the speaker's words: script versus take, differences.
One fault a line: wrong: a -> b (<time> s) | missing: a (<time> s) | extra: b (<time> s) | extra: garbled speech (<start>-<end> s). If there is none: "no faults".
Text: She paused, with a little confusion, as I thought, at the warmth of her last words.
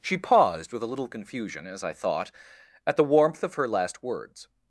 no faults